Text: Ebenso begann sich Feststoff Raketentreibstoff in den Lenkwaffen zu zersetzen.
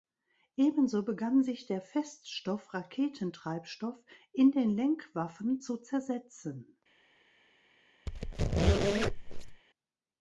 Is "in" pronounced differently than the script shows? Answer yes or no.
no